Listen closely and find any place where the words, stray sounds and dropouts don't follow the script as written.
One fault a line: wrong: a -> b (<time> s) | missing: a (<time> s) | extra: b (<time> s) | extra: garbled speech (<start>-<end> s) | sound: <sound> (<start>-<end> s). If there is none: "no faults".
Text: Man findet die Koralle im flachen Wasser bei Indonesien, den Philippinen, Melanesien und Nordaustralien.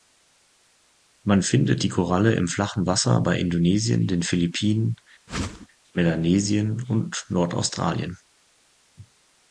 sound: whoosh (5.3-5.7 s)